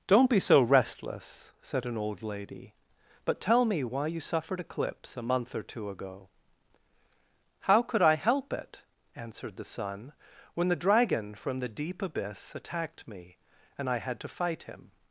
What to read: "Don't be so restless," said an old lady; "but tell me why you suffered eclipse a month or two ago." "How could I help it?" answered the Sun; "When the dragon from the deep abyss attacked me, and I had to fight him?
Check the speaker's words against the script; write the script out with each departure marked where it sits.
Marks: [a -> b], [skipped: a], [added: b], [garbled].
"Don't be so restless," said an old lady; "but tell me why you suffered eclipse a month or two ago." "How could I help it?" answered the Sun; "When the dragon from the deep abyss attacked me, and I had to fight him?